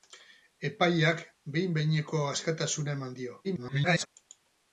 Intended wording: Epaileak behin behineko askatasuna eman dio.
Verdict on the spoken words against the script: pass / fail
fail